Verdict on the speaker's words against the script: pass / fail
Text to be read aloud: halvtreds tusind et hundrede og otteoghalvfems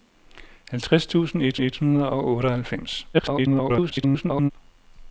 fail